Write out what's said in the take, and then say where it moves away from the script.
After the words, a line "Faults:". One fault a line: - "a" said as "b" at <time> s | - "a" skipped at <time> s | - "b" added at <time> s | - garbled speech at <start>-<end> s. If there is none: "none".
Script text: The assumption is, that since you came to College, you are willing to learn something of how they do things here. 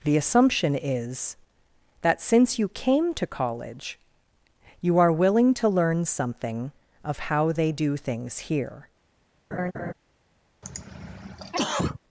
The assumption is, that since you came to College, you are willing to learn something of how they do things here.
Faults:
none